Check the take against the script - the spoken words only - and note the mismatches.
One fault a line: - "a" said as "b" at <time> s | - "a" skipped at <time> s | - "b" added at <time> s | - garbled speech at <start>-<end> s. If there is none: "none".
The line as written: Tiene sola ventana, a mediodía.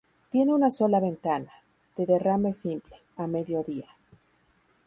- "una" added at 0.5 s
- "de derrame simple" added at 1.9 s